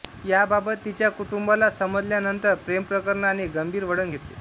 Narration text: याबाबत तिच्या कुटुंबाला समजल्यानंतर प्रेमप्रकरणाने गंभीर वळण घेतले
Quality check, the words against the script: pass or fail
pass